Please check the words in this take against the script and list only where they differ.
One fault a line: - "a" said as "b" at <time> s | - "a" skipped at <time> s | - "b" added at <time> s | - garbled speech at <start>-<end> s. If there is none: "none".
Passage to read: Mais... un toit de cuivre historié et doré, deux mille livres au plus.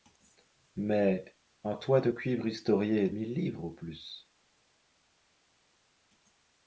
- "doré deux" skipped at 3.1 s